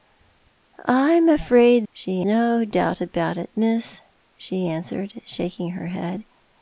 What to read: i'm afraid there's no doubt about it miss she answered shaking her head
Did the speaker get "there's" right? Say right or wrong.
wrong